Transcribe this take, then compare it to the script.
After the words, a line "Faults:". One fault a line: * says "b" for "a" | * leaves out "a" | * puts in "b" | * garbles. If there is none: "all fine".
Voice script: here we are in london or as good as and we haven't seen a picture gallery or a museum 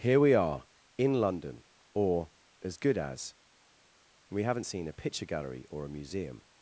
here we are in london or as good as and we haven't seen a picture gallery or a museum
Faults:
all fine